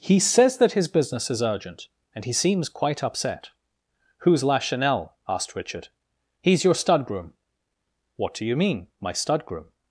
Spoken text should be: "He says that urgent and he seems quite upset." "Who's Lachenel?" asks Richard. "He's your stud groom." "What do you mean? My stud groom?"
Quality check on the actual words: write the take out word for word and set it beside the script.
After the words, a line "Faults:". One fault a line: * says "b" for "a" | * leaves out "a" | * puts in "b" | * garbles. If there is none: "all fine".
"He says that his business is urgent and he seems quite upset." "Who's Lachenel?" asked Richard. "He's your stud groom." "What do you mean? My stud groom?"
Faults:
* puts in "his business is"
* says "asked" for "asks"